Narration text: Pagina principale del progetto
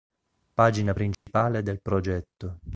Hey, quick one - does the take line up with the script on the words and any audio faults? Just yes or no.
no